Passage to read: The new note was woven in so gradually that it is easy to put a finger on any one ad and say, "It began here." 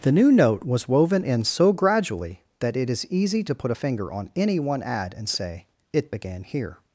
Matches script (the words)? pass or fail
pass